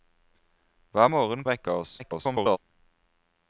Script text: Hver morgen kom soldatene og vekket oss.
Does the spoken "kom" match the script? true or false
false